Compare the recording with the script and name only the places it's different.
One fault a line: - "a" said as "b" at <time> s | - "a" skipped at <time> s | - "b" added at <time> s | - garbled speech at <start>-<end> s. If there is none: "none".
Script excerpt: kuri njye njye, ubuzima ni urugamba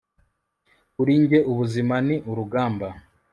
- "njye" skipped at 1.4 s